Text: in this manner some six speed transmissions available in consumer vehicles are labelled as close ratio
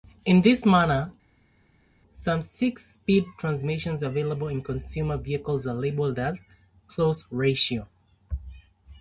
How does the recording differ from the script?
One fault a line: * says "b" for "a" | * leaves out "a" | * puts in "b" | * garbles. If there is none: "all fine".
all fine